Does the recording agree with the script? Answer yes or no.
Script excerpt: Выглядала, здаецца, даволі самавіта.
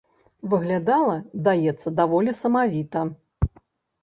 yes